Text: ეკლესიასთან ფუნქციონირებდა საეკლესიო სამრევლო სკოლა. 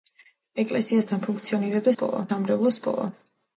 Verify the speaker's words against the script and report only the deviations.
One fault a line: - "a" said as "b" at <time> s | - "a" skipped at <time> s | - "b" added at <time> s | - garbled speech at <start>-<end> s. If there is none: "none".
- "საეკლესიო" said as "სკოლა" at 1.9 s